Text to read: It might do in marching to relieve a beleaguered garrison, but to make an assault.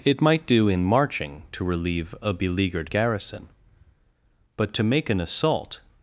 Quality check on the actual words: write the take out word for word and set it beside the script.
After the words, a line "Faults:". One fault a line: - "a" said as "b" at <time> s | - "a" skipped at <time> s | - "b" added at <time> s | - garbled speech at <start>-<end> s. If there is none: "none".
It might do in marching to relieve a beleaguered garrison, but to make an assault.
Faults:
none